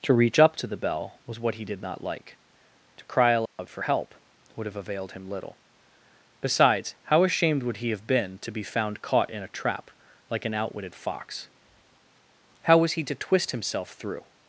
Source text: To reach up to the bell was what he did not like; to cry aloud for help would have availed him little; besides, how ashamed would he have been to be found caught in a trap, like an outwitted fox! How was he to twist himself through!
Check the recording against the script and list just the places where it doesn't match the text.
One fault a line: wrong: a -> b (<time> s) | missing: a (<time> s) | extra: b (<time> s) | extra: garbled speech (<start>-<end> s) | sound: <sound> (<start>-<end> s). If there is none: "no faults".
sound: dropout (3.5-3.6 s)